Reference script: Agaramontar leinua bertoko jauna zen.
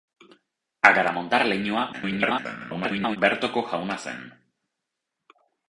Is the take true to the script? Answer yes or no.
no